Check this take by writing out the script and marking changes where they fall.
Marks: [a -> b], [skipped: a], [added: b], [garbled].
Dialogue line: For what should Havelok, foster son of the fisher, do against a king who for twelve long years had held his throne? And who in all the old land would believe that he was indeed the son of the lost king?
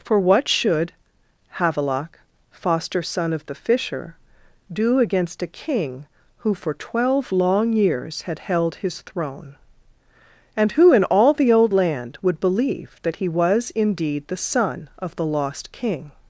For what should Havelok, foster son of the fisher, do against a king who for twelve long years had held his throne? And who in all the old land would believe that he was indeed the son of the lost king?